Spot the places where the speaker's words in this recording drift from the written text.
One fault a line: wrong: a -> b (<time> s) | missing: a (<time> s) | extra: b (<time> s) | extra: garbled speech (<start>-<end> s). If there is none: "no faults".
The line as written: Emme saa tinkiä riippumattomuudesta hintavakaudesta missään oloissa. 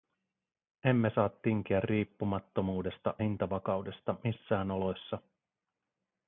no faults